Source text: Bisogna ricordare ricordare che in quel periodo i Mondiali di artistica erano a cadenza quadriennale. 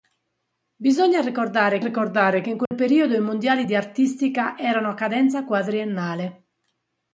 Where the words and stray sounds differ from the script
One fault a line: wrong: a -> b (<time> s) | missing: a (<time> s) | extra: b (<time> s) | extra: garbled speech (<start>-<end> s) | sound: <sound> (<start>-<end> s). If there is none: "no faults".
sound: dropout (2.7-2.7 s)